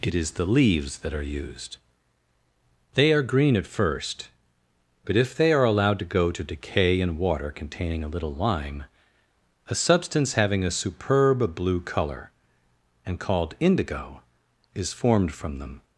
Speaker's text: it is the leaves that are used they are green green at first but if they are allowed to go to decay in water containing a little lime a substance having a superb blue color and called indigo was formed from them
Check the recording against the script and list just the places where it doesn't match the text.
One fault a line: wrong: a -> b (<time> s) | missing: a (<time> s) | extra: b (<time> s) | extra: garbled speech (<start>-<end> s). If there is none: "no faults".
missing: green (3.5 s)
wrong: was -> is (14.7 s)